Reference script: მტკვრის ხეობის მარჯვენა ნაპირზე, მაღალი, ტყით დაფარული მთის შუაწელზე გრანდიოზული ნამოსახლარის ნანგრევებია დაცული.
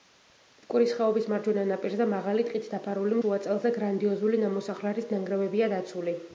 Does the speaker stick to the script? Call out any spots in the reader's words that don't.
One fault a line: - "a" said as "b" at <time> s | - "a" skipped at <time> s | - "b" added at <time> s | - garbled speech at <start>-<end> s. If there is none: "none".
- "მთის" skipped at 3.2 s